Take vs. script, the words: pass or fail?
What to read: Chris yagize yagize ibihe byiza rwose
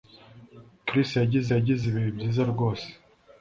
pass